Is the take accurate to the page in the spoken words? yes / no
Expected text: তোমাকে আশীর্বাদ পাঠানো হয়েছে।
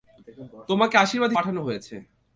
yes